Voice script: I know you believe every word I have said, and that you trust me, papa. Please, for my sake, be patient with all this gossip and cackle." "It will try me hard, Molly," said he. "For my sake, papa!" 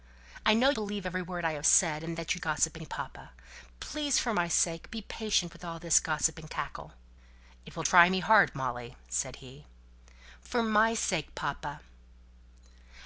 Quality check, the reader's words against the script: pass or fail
fail